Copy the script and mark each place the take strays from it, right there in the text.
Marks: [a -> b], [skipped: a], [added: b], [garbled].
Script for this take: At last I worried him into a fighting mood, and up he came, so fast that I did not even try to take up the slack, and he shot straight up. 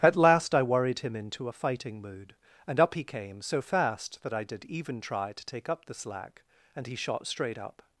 At last I worried him into a fighting mood, and up he came, so fast that I did [skipped: not] even try to take up the slack, and he shot straight up.